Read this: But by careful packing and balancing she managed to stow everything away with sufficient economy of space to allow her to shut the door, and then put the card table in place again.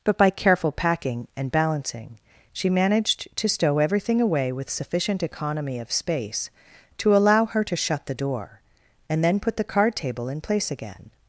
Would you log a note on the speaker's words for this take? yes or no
no